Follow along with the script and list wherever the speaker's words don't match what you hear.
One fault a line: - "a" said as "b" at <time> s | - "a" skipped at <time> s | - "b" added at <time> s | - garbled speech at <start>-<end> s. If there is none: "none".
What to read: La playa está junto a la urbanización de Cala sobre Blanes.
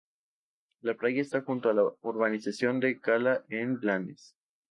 - "sobre" said as "en" at 3.5 s